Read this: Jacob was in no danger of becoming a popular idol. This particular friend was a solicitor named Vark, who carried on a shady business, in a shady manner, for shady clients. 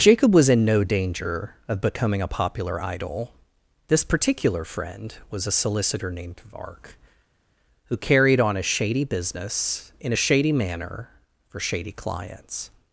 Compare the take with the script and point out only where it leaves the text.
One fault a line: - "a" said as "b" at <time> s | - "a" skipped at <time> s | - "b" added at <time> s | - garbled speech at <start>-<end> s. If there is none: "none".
none